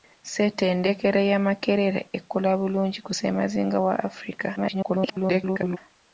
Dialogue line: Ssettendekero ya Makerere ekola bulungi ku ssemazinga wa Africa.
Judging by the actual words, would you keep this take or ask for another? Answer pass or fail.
fail